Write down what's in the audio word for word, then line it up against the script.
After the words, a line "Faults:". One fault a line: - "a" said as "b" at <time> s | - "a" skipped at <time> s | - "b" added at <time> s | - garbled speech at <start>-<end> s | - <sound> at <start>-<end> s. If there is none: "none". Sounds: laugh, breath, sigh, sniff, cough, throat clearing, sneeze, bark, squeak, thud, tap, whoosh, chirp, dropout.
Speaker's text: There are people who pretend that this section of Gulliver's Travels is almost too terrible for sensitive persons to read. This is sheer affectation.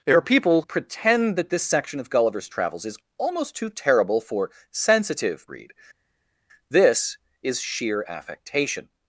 There are people pretend that this section of Gulliver's Travels is almost too terrible for sensitive read. This is sheer affectation.
Faults:
- "who" skipped at 0.6 s
- "persons to" skipped at 5.5 s